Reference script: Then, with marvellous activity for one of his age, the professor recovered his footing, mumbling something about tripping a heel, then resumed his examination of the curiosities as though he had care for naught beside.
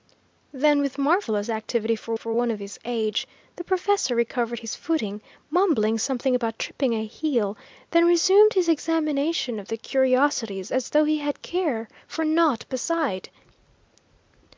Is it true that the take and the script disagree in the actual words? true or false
true